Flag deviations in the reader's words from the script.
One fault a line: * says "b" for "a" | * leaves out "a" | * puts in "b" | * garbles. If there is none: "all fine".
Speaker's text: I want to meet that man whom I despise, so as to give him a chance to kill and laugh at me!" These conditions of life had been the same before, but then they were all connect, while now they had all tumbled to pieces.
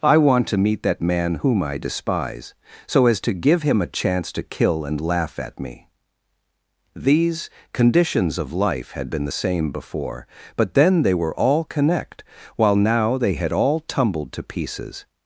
all fine